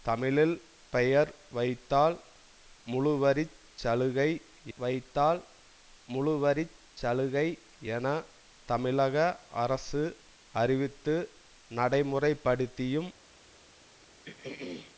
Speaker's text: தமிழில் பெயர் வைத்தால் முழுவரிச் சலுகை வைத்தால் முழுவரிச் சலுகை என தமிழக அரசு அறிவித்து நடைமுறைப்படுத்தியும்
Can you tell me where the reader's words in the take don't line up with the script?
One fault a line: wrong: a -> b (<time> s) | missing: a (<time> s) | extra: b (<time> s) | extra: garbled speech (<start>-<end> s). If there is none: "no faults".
no faults